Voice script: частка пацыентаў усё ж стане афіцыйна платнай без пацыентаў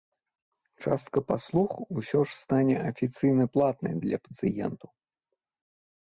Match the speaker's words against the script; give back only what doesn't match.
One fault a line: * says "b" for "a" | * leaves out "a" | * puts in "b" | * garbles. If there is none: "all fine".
* says "паслуг" for "пацыентаў"
* says "для" for "без"